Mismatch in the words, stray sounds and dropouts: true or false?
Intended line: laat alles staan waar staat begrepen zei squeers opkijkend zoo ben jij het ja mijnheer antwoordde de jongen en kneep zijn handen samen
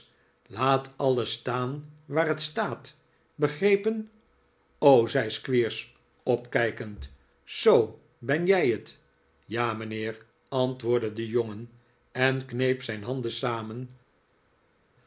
true